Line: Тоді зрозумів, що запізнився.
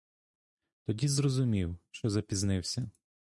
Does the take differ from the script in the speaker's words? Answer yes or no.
no